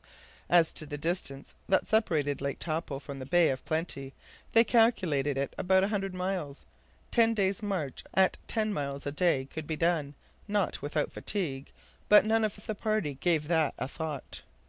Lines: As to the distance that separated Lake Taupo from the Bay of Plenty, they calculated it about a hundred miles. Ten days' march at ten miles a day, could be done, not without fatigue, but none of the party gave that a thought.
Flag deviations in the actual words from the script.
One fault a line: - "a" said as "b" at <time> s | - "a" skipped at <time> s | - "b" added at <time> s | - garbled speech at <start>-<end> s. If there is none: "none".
- "of" added at 12.5 s